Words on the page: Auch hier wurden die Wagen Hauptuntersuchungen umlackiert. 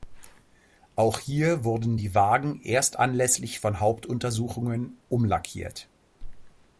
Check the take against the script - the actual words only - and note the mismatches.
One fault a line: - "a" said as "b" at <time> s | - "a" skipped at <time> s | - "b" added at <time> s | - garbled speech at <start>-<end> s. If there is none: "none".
- "erst anlässlich von" added at 2.6 s